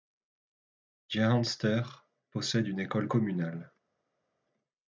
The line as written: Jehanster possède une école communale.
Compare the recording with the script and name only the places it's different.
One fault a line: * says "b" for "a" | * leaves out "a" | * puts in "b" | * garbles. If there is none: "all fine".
all fine